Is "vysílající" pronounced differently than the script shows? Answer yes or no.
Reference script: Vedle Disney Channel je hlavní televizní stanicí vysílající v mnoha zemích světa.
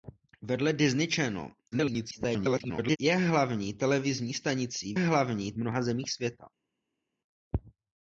yes